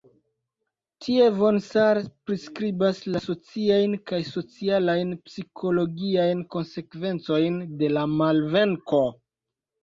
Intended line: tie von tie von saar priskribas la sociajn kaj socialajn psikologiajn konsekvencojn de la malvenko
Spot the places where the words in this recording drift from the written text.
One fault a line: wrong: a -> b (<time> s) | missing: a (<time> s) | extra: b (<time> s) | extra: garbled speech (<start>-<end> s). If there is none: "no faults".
missing: tie von (1.6 s)